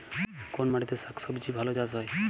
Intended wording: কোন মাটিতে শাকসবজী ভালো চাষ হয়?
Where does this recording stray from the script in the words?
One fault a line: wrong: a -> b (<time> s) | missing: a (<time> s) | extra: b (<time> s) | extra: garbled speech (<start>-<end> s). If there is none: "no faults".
no faults